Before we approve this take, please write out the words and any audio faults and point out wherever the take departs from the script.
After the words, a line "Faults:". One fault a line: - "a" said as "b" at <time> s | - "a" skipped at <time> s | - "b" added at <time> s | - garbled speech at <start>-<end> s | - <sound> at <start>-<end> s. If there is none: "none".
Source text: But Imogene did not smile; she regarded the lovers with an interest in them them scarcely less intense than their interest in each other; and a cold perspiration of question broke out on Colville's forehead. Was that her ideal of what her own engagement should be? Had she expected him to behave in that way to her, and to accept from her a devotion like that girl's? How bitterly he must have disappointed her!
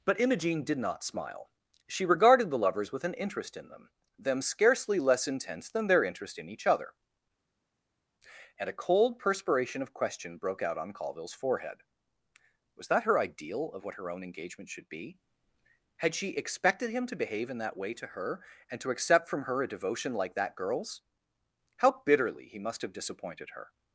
But Imogene did not smile; she regarded the lovers with an interest in them them scarcely less intense than their interest in each other; and a cold perspiration of question broke out on Colville's forehead. Was that her ideal of what her own engagement should be? Had she expected him to behave in that way to her, and to accept from her a devotion like that girl's? How bitterly he must have disappointed her!
Faults:
none